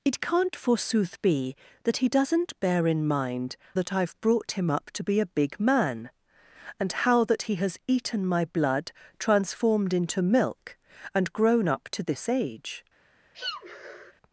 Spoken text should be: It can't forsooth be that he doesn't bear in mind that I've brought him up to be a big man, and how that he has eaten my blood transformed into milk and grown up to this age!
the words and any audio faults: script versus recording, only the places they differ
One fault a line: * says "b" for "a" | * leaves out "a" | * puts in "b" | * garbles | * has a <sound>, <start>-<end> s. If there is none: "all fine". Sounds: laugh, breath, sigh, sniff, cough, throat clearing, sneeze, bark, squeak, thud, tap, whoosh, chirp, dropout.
* has a sneeze, 13.3-14.1 s